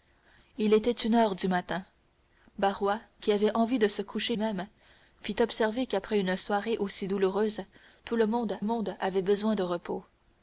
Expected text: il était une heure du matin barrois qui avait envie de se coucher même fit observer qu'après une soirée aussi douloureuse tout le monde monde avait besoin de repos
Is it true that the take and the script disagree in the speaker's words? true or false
false